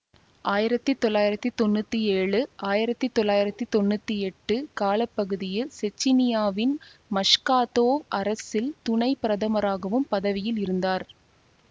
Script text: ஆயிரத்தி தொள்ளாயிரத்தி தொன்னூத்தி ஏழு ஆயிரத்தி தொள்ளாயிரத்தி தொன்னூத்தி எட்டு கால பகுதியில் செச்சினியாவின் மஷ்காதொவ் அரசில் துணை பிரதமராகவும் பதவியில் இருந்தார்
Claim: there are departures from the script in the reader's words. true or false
false